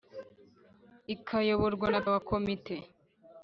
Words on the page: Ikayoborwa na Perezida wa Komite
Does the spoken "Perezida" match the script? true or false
false